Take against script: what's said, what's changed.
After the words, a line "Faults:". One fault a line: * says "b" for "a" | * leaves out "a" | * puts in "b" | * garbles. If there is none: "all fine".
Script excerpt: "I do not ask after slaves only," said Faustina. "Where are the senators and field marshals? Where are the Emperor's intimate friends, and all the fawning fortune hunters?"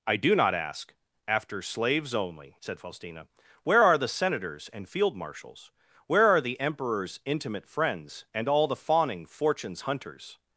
"I do not ask after slaves only," said Faustina. "Where are the senators and field marshals? Where are the Emperor's intimate friends, and all the fawning fortunes hunters?"
Faults:
* says "fortunes" for "fortune"